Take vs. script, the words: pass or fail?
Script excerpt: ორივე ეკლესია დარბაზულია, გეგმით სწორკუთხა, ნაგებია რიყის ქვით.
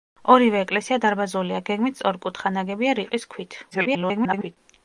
fail